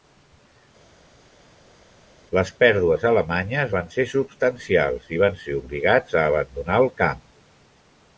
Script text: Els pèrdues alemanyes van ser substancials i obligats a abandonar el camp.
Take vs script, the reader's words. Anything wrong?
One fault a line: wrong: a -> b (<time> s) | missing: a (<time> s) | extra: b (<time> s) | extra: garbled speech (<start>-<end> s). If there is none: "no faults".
wrong: Els -> Les (2.4 s)
extra: van ser (5.2 s)